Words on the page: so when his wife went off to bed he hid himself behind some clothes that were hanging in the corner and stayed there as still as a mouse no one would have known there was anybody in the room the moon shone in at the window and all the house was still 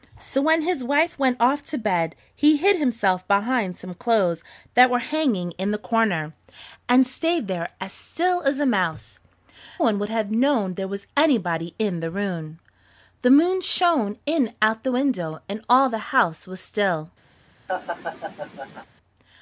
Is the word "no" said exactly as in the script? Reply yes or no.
no